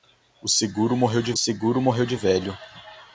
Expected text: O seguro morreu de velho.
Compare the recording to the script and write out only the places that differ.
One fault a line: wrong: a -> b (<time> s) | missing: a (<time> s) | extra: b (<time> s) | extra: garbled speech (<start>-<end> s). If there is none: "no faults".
extra: seguro morreu de (1.3 s)